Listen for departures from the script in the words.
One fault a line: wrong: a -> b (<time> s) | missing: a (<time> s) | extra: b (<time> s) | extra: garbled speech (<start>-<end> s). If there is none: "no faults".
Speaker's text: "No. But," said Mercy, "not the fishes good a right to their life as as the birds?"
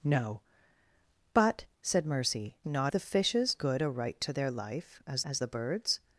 no faults